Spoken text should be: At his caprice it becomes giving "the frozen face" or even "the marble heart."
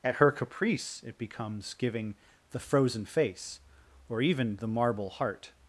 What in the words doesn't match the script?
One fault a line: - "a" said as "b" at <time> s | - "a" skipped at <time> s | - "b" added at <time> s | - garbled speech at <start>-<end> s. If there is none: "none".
- "his" said as "her" at 0.1 s